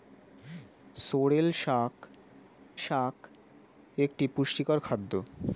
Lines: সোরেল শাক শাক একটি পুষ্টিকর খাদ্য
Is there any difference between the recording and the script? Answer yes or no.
no